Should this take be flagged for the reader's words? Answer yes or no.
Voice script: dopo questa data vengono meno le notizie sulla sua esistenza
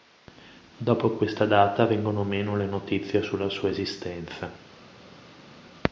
no